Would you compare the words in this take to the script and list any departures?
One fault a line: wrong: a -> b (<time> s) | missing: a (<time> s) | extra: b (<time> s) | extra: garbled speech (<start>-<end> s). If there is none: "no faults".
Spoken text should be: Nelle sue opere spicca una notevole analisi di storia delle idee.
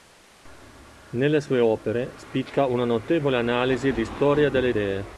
no faults